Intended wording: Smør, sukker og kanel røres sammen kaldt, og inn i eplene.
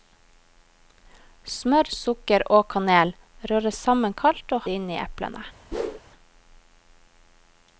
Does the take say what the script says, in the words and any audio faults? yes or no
no